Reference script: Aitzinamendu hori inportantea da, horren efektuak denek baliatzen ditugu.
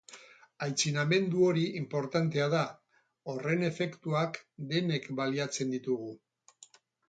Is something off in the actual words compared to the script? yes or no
no